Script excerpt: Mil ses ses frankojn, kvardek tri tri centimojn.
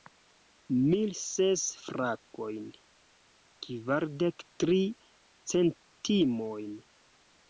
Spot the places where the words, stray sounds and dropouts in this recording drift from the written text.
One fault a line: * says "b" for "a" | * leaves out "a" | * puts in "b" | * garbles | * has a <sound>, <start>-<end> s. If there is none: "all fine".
* leaves out "ses"
* leaves out "tri"